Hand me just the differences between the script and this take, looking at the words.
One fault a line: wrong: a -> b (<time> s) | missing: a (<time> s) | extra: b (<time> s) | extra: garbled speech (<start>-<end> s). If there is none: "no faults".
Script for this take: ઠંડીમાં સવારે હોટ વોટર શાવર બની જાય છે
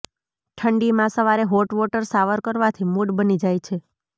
extra: કરવાથી મૂડ (2.4 s)